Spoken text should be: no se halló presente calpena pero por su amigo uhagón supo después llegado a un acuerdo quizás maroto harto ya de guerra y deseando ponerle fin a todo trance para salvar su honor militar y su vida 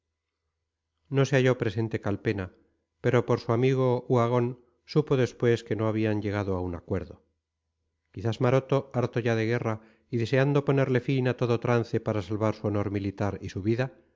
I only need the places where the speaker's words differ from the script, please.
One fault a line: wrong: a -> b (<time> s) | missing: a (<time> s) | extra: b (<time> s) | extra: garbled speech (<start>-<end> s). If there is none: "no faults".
extra: que no habían (5.6 s)